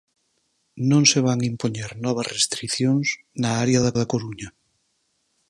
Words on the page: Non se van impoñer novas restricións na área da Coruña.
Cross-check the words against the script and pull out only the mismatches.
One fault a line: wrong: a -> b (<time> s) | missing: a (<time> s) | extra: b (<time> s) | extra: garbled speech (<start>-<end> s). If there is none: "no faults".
extra: da (4.0 s)